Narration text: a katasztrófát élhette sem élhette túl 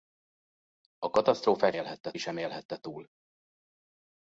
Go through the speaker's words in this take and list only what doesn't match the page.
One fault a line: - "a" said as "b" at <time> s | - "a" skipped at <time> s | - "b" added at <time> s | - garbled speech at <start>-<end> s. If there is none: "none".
none